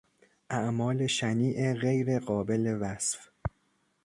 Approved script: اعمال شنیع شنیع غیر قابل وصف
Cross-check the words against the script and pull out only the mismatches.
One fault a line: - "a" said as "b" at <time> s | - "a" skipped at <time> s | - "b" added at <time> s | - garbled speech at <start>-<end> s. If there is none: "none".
- "شنیع" skipped at 1.7 s